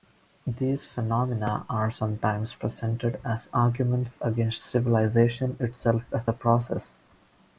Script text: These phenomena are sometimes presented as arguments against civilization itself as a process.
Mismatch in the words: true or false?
false